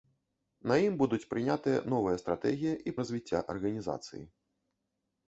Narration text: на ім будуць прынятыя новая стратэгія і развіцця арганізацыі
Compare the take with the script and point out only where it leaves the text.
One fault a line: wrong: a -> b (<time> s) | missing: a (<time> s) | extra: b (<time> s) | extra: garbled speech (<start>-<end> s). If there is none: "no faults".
no faults